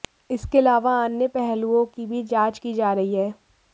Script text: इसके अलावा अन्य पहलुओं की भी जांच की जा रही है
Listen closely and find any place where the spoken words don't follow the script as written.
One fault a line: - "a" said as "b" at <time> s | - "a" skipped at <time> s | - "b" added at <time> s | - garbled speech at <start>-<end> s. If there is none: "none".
none